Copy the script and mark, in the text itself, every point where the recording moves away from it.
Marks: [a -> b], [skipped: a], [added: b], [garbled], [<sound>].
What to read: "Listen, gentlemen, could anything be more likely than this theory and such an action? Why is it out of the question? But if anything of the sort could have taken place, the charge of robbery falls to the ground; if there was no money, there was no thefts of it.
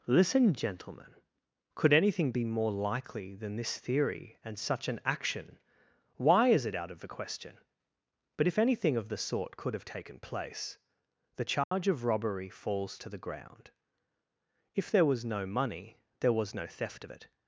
"Listen, gentlemen, could anything be more likely than this theory and such an action? Why is it out of the question? But if anything of the sort could have taken place, the charge [dropout] of robbery falls to the ground; if there was no money, there was no [thefts -> theft] of it.